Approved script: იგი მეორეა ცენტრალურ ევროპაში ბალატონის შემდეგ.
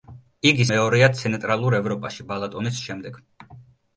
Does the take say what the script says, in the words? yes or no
yes